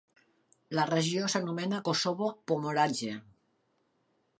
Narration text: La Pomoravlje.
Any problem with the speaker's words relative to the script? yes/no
yes